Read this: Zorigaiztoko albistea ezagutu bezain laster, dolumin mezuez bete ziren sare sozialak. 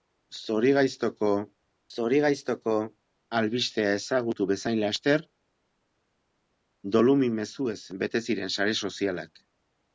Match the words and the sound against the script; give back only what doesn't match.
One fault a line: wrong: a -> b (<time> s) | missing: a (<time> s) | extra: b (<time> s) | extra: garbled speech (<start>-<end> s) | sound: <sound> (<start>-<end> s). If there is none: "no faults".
extra: zorigaiztoko (1.9 s)